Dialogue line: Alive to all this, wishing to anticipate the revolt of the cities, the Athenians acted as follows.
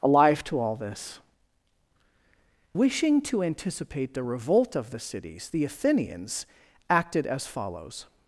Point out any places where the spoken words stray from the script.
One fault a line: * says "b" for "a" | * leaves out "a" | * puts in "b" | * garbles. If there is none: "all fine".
all fine